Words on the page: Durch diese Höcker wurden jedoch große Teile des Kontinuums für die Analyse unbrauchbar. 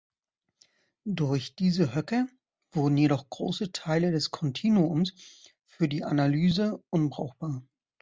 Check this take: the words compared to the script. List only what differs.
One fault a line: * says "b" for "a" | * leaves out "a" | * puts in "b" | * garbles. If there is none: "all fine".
all fine